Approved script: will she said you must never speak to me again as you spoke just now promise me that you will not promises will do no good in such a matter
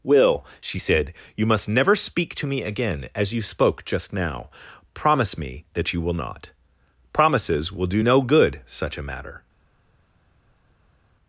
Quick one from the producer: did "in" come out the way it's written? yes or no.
no